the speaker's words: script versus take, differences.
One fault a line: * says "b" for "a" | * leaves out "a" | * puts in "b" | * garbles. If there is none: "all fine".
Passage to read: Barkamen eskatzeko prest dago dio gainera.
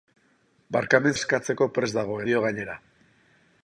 all fine